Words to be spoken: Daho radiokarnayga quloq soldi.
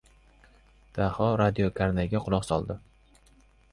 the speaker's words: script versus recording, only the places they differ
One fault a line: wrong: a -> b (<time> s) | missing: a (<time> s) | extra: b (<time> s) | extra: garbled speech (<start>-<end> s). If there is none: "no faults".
no faults